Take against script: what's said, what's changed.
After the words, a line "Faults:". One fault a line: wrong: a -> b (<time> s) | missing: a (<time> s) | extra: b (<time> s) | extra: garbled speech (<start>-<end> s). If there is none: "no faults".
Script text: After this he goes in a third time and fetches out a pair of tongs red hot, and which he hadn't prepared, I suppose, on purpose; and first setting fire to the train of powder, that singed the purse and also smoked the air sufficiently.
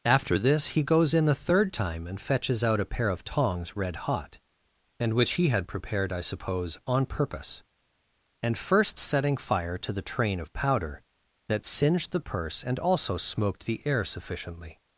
After this he goes in a third time and fetches out a pair of tongs red hot, and which he had prepared, I suppose, on purpose; and first setting fire to the train of powder, that singed the purse and also smoked the air sufficiently.
Faults:
wrong: hadn't -> had (5.5 s)